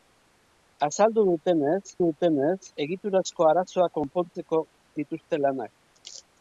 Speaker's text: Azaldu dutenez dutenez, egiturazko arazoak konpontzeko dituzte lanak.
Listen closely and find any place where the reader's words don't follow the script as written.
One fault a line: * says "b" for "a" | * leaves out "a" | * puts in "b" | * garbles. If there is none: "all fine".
all fine